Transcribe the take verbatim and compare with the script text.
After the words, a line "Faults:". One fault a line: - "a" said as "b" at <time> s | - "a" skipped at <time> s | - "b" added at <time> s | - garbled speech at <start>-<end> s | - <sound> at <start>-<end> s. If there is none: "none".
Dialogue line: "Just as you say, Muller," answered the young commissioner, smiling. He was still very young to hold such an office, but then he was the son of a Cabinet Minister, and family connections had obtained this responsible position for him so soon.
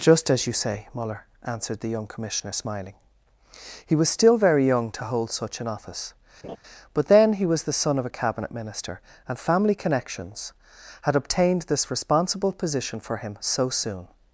"Just as you say, Muller," answered the young commissioner, smiling. He was still very young to hold such an office, but then he was the son of a Cabinet Minister, and family connections had obtained this responsible position for him so soon.
Faults:
- laugh at 6.4-6.6 s